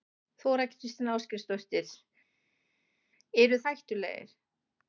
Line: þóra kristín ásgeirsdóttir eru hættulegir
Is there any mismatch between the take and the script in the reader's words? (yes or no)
no